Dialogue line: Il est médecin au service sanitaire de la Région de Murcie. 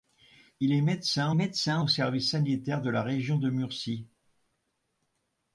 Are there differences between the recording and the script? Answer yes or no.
yes